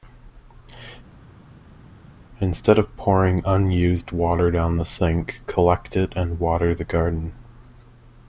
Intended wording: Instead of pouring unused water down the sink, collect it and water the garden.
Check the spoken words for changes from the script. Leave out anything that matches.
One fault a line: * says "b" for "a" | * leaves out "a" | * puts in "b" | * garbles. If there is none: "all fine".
all fine